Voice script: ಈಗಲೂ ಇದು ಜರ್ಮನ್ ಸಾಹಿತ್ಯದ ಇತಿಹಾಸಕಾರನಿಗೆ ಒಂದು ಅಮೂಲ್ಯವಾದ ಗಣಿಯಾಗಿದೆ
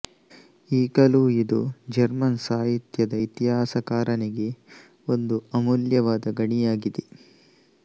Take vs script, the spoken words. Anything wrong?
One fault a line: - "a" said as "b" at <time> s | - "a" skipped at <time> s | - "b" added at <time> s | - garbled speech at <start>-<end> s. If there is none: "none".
none